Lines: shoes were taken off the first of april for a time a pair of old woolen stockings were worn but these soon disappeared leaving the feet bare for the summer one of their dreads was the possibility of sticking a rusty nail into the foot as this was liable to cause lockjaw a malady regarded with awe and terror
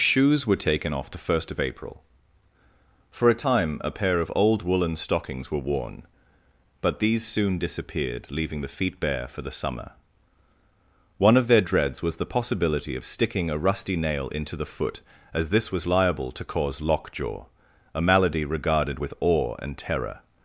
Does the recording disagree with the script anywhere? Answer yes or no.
no